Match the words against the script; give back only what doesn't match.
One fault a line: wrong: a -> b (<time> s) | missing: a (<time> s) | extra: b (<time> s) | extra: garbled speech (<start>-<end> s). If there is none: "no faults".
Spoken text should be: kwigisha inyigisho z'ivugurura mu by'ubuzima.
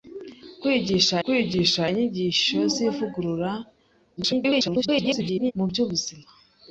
extra: kwigisha (1.2 s)
extra: garbled speech (4.2-5.5 s)